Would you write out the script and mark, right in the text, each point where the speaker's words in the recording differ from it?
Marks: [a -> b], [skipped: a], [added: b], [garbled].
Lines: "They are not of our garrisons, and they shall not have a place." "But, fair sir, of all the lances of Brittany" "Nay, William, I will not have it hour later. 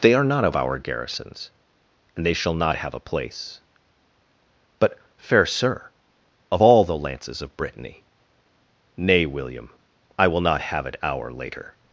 "They are not of our garrisons, and they shall not have a place." "But, fair sir, of all the lances of Brittany" "Nay, William, I will not have it hour later.